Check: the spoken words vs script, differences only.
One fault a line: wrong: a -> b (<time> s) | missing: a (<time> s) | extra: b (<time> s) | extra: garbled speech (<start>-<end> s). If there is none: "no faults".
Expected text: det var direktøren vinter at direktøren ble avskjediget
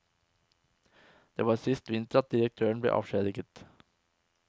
wrong: direktøren -> sist (1.6 s)